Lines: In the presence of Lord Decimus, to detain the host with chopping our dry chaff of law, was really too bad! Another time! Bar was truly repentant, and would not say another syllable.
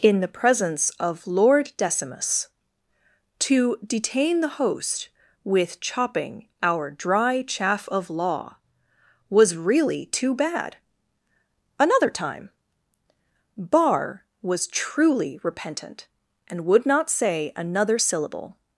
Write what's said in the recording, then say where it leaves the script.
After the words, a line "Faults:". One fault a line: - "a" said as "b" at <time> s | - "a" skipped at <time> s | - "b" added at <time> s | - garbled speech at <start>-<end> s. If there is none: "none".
In the presence of Lord Decimus, to detain the host with chopping our dry chaff of law, was really too bad! Another time! Bar was truly repentant, and would not say another syllable.
Faults:
none